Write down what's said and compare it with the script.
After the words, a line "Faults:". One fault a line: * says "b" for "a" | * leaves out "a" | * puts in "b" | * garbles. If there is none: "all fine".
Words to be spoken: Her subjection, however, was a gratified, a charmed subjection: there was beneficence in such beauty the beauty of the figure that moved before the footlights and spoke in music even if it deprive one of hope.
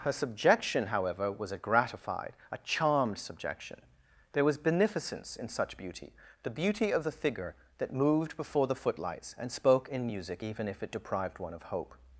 Her subjection, however, was a gratified, a charmed subjection: there was beneficence in such beauty the beauty of the figure that moved before the footlights and spoke in music even if it deprived one of hope.
Faults:
* says "deprived" for "deprive"